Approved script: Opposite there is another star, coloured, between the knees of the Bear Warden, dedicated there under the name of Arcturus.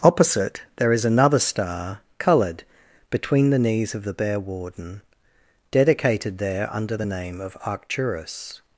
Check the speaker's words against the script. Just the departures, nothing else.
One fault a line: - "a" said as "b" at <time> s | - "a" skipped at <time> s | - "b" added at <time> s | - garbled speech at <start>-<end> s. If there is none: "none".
none